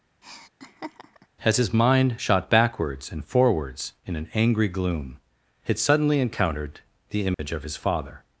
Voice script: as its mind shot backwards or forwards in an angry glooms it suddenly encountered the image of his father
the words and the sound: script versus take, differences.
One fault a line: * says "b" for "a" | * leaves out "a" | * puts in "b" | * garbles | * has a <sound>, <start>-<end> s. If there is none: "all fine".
* has a laugh, 0.2-1.3 s
* says "his" for "its"
* says "and" for "or"
* says "gloom" for "glooms"
* has a dropout, 7.3-7.4 s